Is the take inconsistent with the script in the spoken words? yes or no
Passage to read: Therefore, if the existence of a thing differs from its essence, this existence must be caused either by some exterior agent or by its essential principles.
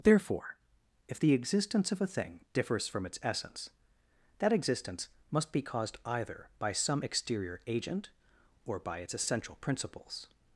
yes